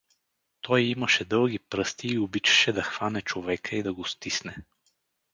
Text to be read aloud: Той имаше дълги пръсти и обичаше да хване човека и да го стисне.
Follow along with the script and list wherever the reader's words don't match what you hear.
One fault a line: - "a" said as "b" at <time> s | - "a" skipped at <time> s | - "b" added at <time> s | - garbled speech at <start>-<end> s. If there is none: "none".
none